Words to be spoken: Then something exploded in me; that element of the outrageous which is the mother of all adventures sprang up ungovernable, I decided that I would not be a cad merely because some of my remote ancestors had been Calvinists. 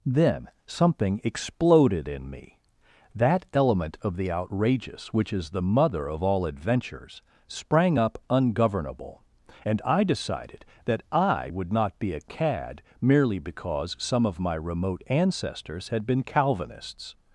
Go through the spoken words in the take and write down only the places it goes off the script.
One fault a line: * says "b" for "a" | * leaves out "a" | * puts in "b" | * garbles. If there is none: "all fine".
* puts in "and"